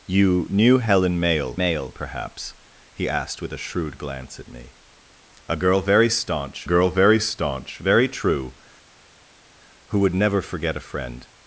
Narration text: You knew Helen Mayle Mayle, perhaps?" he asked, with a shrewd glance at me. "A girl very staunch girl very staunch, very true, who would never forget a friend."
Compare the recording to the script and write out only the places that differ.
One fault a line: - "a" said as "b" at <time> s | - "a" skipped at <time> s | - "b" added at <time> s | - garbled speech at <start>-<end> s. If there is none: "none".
none